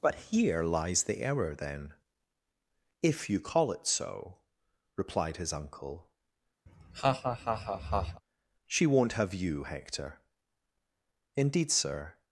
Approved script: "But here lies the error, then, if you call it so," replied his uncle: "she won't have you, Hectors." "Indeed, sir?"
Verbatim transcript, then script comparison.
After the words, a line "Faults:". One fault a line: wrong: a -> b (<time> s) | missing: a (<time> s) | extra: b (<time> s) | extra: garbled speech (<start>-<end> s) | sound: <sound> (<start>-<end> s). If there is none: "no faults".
"But here lies the error, then, if you call it so," replied his uncle: "she won't have you, Hector." "Indeed, sir?"
Faults:
sound: laugh (6.7-8.2 s)
wrong: Hectors -> Hector (9.6 s)